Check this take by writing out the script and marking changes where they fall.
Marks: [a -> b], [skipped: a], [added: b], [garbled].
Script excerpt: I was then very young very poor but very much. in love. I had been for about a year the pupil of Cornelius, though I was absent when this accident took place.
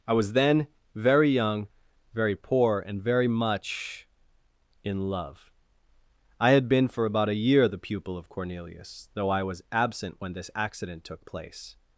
I was then very young very poor [but -> and] very much. in love. I had been for about a year the pupil of Cornelius, though I was absent when this accident took place.